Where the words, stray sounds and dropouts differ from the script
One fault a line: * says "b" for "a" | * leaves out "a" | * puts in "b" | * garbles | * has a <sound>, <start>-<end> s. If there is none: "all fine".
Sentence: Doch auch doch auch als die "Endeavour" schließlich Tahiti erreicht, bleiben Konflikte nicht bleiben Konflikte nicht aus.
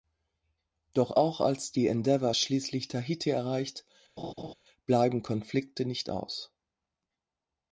* leaves out "doch auch"
* has a laugh, 4.2-4.5 s
* leaves out "bleiben Konflikte nicht"